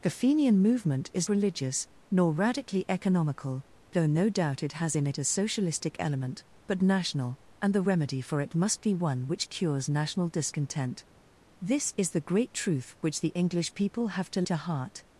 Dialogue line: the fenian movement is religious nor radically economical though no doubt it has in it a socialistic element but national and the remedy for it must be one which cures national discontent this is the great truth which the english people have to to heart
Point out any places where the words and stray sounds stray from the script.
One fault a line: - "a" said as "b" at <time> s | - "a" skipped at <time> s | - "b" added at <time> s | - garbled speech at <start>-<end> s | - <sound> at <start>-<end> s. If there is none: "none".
none